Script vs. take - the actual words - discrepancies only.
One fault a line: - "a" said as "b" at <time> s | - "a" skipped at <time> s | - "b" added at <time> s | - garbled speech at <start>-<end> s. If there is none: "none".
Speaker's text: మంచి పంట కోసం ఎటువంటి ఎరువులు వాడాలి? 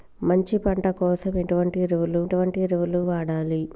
- "ఎటువంటి ఎరువులు" added at 2.2 s